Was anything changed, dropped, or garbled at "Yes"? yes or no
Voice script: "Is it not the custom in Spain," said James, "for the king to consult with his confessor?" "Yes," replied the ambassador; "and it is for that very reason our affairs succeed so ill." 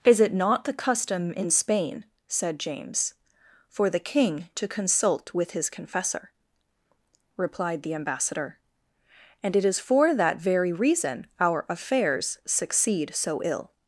yes